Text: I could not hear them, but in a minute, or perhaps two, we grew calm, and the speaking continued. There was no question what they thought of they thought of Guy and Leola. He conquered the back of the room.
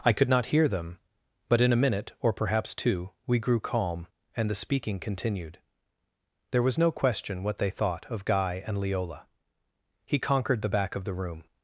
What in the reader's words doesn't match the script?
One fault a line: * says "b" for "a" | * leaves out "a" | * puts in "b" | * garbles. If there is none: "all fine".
* leaves out "they thought of"